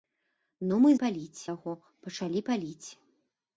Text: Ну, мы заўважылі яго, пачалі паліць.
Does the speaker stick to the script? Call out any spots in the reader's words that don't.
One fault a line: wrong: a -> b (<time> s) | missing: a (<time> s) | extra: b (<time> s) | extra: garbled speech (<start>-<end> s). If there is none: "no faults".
wrong: заўважылі -> паліць (1.0 s)